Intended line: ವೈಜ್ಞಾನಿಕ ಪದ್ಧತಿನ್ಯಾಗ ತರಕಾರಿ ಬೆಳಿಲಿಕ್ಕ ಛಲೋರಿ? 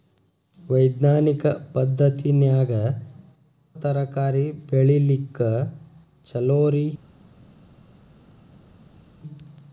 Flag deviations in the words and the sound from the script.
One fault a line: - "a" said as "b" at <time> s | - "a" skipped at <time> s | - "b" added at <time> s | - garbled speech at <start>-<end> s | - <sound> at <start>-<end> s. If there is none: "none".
none